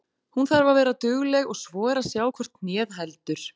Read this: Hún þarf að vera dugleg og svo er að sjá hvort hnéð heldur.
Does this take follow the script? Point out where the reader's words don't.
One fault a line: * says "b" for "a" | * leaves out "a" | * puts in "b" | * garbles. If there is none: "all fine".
all fine